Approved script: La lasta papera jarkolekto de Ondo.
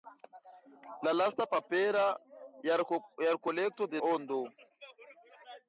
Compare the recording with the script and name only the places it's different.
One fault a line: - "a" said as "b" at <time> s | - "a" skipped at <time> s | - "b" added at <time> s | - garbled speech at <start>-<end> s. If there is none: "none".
none